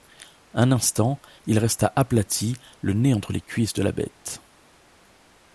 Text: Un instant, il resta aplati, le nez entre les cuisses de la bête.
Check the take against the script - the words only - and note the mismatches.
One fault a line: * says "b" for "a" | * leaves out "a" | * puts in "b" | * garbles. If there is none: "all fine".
all fine